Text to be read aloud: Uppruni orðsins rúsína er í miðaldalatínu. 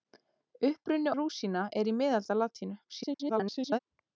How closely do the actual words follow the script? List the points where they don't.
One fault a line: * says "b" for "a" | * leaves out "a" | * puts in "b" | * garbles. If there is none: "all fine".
* leaves out "orðsins"
* garbles